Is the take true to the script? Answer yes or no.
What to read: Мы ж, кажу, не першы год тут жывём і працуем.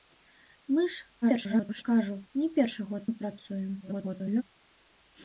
no